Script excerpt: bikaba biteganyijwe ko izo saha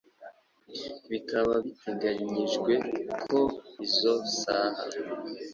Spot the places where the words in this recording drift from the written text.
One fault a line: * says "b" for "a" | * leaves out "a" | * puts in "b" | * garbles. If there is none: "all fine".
all fine